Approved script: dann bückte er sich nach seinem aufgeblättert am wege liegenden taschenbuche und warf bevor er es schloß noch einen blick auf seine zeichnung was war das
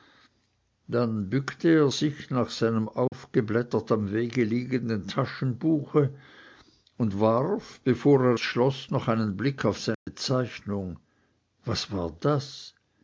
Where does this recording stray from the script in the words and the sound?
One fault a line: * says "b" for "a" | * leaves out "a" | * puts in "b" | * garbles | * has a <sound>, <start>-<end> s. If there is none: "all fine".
* has a dropout, 3.1-3.1 s
* leaves out "es"
* has a dropout, 9.9-10.1 s